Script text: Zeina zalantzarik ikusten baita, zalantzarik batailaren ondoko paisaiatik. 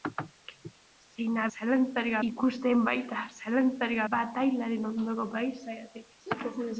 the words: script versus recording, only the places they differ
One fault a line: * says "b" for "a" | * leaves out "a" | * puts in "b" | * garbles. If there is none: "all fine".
all fine